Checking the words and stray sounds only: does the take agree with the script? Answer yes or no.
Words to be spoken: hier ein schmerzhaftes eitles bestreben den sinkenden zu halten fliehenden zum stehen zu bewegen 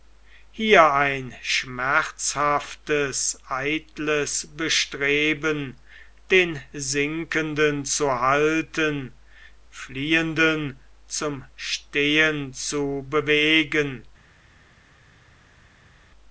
yes